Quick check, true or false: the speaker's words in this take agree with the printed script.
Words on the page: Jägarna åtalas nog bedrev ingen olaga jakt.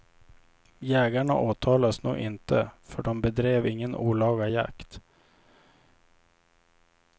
false